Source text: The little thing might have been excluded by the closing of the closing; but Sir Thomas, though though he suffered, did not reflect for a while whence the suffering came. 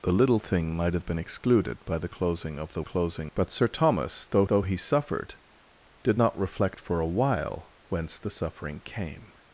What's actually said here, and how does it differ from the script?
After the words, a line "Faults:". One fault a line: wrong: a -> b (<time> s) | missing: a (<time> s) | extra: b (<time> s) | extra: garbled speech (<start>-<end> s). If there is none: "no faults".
The little thing might have been excluded by the closing of the closing; but Sir Thomas, though though he suffered, did not reflect for a while whence the suffering came.
Faults:
no faults